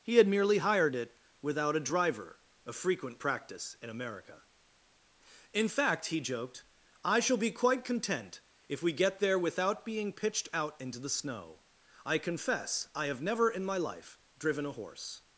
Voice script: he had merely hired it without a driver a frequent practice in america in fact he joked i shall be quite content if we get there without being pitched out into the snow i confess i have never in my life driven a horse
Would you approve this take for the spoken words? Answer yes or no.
yes